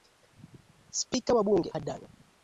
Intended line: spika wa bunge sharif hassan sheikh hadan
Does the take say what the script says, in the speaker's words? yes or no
no